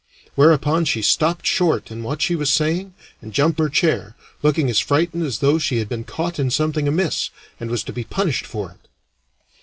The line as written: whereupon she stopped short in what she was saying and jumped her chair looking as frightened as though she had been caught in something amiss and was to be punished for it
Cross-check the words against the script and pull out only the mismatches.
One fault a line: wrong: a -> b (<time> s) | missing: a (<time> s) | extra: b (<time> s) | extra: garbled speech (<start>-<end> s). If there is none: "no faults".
no faults